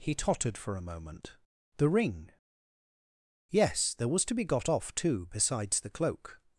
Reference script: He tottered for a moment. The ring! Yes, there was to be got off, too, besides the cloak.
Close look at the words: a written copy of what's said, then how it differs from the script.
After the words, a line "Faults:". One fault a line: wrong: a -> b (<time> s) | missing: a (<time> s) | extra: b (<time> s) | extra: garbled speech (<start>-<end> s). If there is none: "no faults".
He tottered for a moment. The ring! Yes, there was to be got off, too, besides the cloak.
Faults:
no faults